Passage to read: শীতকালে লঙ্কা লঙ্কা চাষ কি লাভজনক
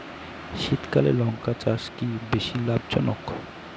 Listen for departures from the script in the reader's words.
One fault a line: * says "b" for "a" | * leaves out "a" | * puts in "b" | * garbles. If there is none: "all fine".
* leaves out "লঙ্কা"
* puts in "বেশী"